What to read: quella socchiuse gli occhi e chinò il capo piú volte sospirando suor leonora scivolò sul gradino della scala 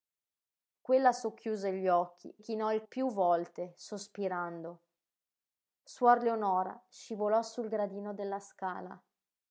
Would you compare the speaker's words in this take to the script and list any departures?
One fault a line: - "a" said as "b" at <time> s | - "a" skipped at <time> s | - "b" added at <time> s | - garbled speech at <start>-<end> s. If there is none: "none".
- "e" skipped at 2.4 s
- "capo" skipped at 2.8 s